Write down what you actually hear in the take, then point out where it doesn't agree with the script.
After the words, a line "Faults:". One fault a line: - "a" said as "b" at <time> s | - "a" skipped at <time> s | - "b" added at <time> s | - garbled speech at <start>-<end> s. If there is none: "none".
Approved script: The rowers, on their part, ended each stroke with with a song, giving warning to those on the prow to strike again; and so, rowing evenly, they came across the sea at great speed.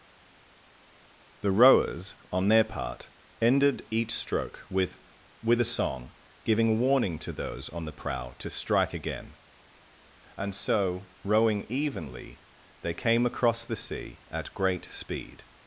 The rowers, on their part, ended each stroke with with a song, giving warning to those on the prow to strike again; and so, rowing evenly, they came across the sea at great speed.
Faults:
none